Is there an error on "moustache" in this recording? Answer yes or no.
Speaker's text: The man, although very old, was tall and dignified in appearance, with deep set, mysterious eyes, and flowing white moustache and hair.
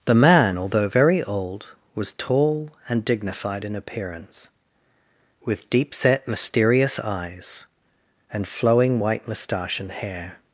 no